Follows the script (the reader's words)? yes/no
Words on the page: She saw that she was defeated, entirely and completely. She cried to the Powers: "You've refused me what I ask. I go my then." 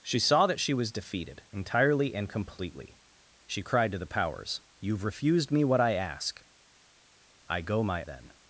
yes